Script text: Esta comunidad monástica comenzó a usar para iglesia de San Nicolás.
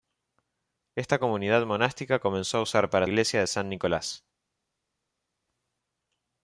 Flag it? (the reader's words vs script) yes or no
no